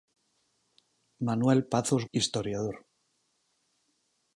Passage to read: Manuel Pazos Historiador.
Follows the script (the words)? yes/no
yes